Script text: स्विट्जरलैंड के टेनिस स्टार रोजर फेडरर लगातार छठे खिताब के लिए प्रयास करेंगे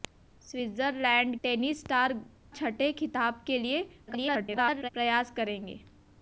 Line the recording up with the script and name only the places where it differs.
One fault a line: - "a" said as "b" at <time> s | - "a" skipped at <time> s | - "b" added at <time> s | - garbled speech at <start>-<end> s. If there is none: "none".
- "के" skipped at 1.4 s
- "रोजर फेडरर लगातार" skipped at 2.1 s
- garbled speech at 4.1-4.9 s